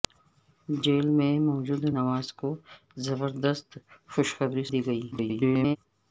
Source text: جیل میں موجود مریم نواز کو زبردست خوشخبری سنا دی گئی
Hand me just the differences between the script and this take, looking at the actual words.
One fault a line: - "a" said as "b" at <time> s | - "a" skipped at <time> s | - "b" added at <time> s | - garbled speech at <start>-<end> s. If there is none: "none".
- "مریم" skipped at 1.8 s
- "سنا" skipped at 4.6 s
- garbled speech at 5.1-5.8 s